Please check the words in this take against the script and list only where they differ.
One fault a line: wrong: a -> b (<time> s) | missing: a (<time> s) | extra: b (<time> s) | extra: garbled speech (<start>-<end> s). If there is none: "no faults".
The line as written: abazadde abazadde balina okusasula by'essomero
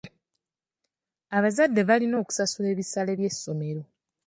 missing: abazadde (1.8 s)
extra: ebisale (2.7 s)